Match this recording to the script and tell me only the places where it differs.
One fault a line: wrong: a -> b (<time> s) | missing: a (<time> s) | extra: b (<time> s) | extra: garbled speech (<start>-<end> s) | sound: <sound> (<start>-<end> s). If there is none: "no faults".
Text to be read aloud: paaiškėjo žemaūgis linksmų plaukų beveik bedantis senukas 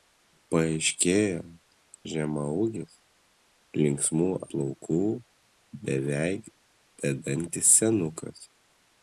no faults